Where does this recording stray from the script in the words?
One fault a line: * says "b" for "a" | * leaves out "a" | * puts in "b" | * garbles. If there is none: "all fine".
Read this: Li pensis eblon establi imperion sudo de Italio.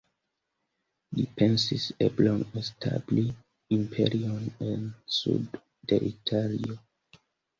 * puts in "en"